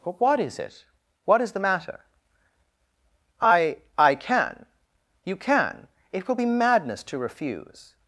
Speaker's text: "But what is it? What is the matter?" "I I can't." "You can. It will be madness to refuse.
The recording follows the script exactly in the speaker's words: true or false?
false